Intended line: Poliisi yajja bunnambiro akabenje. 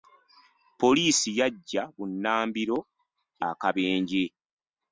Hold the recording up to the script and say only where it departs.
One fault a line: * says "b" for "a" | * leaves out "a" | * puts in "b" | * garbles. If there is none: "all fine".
all fine